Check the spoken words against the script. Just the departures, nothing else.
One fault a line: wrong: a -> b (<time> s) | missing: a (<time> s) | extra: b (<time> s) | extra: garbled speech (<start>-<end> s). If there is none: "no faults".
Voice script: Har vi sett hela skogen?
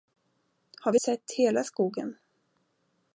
no faults